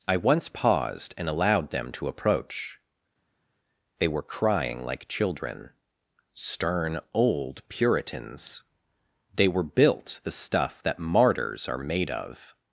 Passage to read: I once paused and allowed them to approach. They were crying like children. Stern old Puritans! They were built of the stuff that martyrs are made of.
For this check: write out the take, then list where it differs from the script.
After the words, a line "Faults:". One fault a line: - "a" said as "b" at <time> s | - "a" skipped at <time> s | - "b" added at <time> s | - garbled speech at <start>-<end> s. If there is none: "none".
I once paused and allowed them to approach. They were crying like children. Stern old Puritans! They were built the stuff that martyrs are made of.
Faults:
- "of" skipped at 10.2 s